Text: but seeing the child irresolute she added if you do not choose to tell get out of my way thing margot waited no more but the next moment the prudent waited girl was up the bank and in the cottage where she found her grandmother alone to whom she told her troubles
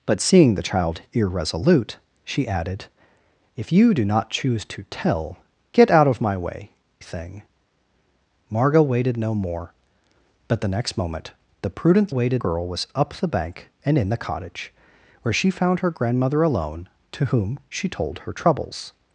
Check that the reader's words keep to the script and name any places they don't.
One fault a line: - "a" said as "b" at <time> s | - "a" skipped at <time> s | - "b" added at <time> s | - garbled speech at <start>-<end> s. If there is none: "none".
none